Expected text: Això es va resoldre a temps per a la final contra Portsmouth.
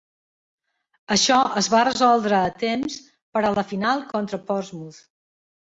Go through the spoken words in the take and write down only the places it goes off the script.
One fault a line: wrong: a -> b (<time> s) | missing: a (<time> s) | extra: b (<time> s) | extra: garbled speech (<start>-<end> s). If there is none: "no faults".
no faults